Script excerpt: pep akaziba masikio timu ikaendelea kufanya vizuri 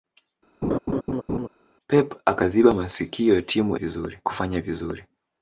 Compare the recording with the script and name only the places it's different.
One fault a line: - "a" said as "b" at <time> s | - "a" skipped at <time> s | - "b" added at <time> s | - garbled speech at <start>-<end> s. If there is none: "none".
- "ikaendelea" said as "vizuri" at 3.7 s